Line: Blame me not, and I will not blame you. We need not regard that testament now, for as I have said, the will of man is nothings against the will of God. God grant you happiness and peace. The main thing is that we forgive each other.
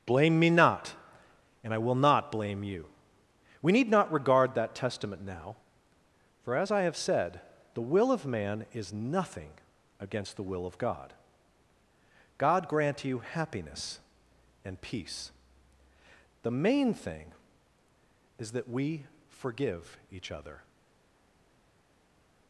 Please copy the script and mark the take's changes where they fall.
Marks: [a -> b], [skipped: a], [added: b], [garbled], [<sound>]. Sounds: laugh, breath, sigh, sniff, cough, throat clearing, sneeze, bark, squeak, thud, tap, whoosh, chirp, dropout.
Blame me not, and I will not blame you. We need not regard that testament now, for as I have said, the will of man is [nothings -> nothing] against the will of God. God grant you happiness and peace. The main thing is that we forgive each other.